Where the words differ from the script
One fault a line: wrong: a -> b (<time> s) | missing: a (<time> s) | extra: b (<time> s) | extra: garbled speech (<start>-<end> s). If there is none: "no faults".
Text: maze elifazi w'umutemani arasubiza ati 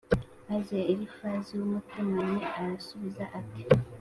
no faults